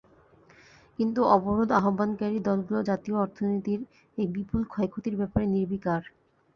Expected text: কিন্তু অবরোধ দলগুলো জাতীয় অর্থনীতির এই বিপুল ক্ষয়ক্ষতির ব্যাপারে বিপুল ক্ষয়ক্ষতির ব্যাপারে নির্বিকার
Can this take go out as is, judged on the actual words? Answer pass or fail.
fail